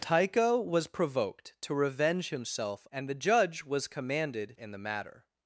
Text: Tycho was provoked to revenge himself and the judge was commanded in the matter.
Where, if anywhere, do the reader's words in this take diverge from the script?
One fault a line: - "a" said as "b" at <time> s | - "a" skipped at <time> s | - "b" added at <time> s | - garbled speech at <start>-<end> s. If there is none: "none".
none